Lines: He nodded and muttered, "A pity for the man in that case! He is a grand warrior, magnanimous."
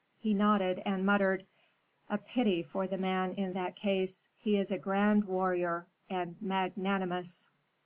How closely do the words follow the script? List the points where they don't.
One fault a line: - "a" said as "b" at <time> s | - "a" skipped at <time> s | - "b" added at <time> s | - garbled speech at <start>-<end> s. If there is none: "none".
- "and" added at 6.1 s